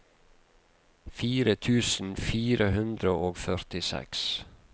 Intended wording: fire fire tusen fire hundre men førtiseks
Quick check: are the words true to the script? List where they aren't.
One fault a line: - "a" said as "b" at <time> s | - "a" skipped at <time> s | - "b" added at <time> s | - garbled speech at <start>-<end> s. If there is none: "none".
- "fire" skipped at 1.6 s
- "men" said as "og" at 3.3 s